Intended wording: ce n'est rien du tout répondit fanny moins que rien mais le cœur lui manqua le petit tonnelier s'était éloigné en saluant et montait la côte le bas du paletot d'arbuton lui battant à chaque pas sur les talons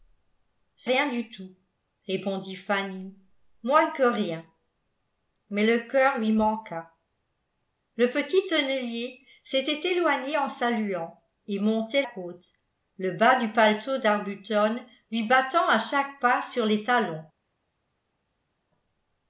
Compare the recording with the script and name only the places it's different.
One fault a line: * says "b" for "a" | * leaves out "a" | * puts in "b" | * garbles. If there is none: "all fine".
* leaves out "n'est"
* leaves out "la"